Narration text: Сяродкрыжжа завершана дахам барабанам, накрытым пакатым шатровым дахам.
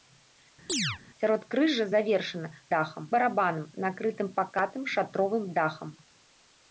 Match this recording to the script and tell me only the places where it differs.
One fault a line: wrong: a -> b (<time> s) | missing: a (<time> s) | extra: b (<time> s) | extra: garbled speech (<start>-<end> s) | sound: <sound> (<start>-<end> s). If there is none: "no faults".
sound: chirp (0.7-1.0 s)